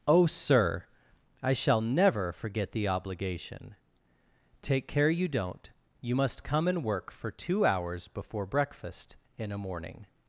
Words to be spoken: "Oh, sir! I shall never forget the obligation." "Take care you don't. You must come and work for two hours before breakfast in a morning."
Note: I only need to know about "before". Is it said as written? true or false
true